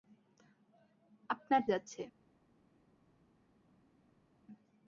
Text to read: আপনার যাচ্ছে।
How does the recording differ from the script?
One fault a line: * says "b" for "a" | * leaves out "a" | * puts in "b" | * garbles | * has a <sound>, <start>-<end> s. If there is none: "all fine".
all fine